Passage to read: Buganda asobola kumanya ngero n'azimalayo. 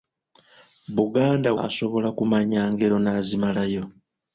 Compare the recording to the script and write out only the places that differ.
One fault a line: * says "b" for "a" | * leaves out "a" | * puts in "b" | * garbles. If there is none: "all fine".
all fine